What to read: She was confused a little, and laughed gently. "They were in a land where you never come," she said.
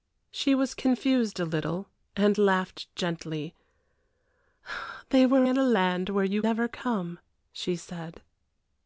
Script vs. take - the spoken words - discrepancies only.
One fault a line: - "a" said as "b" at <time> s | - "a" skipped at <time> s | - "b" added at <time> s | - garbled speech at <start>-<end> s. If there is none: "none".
none